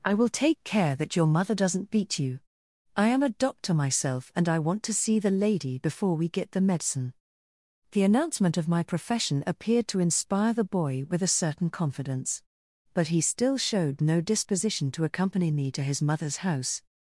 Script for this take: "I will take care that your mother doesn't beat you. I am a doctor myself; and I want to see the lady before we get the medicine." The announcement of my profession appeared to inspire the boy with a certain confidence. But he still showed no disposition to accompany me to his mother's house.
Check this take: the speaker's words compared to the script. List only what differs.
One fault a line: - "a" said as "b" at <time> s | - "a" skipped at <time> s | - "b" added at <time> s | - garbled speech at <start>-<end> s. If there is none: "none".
none